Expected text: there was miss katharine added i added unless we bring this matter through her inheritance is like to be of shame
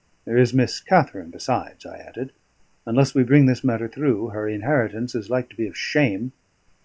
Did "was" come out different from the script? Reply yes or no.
yes